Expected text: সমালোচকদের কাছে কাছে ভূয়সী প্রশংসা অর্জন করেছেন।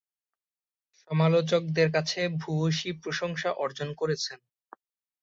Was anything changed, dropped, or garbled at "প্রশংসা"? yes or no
no